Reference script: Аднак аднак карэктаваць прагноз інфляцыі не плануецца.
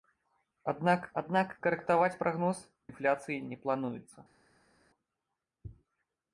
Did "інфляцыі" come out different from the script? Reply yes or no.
no